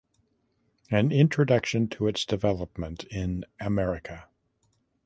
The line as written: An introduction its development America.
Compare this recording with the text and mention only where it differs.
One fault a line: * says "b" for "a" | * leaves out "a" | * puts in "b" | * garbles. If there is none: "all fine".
* puts in "to"
* puts in "in"